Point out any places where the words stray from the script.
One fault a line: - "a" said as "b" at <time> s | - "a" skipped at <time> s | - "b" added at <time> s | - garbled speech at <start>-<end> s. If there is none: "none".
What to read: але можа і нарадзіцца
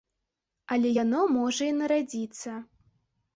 - "яно" added at 1.0 s